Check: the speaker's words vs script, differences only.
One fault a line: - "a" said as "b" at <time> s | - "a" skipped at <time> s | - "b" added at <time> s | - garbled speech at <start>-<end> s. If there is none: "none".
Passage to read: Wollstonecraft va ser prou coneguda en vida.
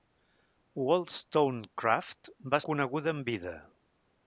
- "ser prou" skipped at 2.6 s